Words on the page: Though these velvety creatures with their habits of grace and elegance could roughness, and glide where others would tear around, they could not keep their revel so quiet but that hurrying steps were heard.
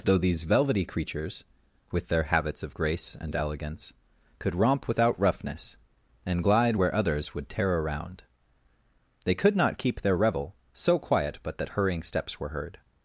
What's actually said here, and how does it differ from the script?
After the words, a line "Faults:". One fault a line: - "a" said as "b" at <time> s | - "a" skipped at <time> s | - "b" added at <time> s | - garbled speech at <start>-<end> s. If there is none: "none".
Though these velvety creatures with their habits of grace and elegance could romp without roughness, and glide where others would tear around, they could not keep their revel so quiet but that hurrying steps were heard.
Faults:
- "romp without" added at 4.6 s